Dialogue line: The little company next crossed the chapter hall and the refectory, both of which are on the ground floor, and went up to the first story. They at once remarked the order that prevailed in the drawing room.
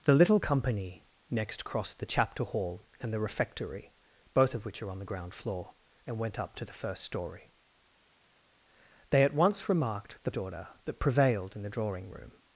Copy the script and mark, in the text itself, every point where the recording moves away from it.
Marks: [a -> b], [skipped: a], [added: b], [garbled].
The little company next crossed the chapter hall and the refectory, both of which are on the ground floor, and went up to the first story. They at once remarked the order that prevailed in the drawing room.